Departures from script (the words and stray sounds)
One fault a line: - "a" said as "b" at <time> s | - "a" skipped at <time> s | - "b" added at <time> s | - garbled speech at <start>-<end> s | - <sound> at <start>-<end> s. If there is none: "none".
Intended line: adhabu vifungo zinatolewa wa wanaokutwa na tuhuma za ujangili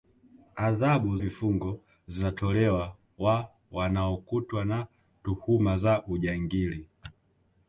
none